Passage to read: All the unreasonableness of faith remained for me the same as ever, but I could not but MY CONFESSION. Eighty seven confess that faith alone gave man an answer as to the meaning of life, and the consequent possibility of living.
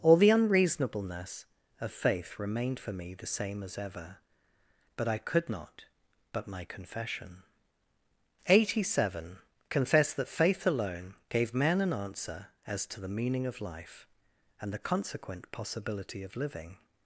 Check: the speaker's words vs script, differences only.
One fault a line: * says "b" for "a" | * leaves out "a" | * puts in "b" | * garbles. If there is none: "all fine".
all fine